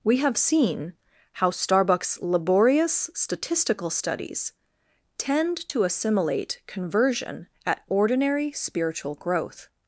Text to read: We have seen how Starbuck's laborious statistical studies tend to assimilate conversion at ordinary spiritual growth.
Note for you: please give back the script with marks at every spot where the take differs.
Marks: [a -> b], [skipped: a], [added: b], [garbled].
We have seen how Starbuck's laborious statistical studies tend to assimilate conversion at ordinary spiritual growth.